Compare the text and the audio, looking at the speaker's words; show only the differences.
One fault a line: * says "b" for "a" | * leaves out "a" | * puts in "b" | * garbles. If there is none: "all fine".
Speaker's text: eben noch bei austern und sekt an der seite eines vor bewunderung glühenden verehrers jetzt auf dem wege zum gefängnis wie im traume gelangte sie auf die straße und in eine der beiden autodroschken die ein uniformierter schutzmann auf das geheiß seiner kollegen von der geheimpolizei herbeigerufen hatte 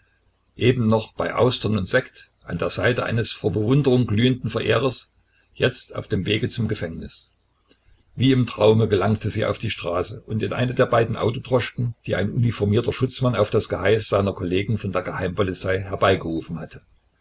all fine